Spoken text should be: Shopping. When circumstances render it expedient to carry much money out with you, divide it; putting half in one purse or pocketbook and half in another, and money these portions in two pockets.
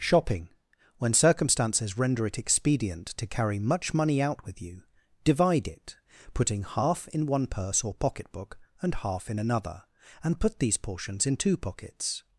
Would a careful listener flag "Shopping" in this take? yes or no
no